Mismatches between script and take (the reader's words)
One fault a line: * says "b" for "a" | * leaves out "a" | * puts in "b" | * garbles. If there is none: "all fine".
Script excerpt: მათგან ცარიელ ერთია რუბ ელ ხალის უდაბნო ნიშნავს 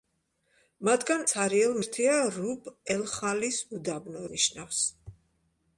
all fine